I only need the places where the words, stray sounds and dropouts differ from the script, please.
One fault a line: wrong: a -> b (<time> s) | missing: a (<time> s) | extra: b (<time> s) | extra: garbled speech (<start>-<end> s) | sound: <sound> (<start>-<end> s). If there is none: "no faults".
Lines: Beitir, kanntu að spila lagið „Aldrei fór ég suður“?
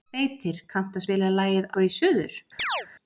missing: Aldrei (1.7 s)
sound: chirp (2.6-2.9 s)